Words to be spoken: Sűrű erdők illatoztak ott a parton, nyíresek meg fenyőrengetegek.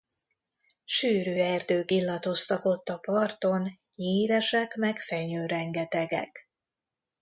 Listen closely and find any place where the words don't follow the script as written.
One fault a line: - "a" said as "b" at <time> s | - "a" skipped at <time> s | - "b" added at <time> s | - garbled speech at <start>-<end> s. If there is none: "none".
none